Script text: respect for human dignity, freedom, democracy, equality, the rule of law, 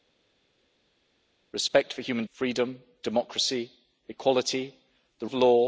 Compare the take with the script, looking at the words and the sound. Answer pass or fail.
fail